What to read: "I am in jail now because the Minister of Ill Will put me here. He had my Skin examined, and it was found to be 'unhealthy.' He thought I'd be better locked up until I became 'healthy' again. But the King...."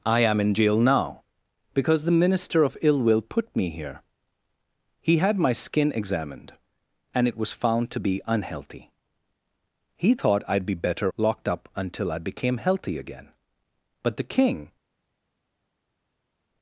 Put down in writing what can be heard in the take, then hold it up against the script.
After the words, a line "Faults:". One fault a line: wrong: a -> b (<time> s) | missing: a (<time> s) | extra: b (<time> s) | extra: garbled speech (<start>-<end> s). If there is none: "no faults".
"I am in jail now because the Minister of Ill Will put me here. He had my Skin examined, and it was found to be 'unhealthy.' He thought I'd be better locked up until I became 'healthy' again. But the King...."
Faults:
no faults